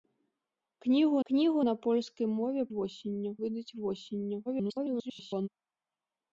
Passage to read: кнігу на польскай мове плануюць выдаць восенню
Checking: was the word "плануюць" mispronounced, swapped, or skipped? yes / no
yes